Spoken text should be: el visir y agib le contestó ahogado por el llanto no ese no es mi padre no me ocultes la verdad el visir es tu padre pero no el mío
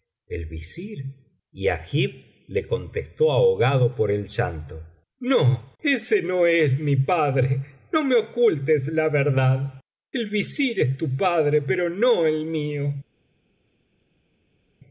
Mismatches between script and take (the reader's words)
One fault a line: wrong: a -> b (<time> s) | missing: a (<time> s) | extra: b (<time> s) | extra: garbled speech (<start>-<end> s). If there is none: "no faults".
no faults